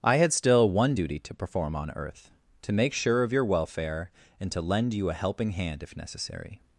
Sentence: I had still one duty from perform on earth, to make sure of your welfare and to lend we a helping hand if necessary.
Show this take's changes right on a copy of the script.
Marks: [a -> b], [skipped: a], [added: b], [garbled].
I had still one duty [from -> to] perform on earth, to make sure of your welfare and to lend [we -> you] a helping hand if necessary.